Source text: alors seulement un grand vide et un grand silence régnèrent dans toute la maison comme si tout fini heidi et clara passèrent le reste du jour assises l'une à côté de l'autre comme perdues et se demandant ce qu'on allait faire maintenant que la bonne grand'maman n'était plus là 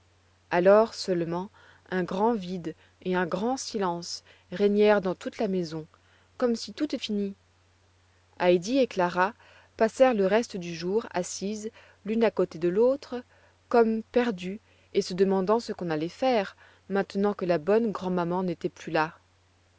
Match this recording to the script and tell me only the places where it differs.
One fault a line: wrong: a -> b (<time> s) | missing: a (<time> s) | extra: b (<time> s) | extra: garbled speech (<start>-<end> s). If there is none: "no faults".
no faults